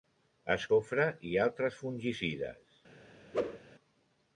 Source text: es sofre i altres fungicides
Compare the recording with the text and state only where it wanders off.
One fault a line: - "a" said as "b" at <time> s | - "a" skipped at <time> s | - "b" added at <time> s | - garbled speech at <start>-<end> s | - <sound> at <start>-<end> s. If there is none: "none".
- whoosh at 3.3-3.6 s